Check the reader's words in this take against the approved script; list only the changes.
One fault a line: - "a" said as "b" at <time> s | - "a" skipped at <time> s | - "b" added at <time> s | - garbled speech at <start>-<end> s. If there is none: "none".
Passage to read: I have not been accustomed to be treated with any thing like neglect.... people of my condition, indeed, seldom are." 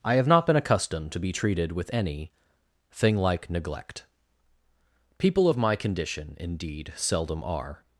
none